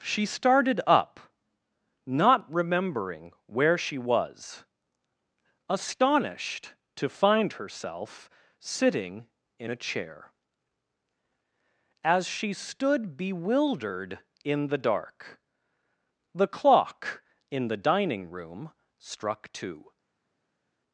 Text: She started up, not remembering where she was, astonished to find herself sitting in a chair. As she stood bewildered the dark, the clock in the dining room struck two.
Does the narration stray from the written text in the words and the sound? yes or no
yes